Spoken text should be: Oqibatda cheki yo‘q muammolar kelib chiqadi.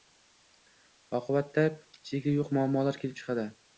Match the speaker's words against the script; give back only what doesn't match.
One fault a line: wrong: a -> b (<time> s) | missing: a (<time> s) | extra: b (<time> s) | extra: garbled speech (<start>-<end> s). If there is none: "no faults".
no faults